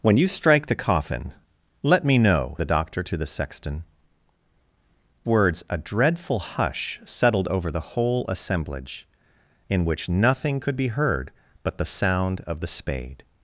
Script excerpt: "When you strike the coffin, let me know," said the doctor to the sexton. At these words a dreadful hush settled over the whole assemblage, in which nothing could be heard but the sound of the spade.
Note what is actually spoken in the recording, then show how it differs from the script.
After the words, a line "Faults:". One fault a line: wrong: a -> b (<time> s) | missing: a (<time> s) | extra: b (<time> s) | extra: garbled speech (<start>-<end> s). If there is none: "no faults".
"When you strike the coffin, let me know," the doctor to the sexton. Words a dreadful hush settled over the whole assemblage, in which nothing could be heard but the sound of the spade.
Faults:
missing: said (2.5 s)
missing: At these (3.8 s)